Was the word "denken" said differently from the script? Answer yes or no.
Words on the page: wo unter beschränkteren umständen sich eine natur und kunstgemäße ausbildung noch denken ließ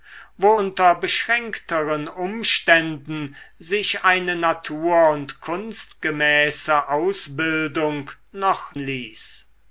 yes